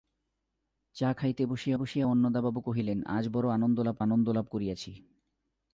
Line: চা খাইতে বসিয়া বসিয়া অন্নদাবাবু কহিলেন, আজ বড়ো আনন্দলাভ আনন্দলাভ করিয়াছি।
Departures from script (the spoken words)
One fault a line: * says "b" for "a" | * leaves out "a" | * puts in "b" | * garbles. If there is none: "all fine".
all fine